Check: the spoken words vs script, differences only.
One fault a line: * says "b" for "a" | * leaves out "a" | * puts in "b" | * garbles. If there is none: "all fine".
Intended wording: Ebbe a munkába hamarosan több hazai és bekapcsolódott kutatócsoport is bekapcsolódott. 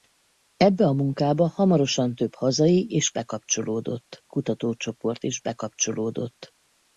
all fine